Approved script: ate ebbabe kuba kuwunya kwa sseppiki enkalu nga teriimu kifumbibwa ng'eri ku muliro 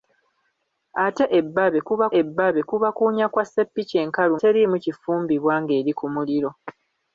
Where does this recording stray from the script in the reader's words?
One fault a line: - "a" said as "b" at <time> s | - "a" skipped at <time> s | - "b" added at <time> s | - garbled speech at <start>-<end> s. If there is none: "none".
- "ebbabe kuba" added at 2.2 s
- "nga" skipped at 4.3 s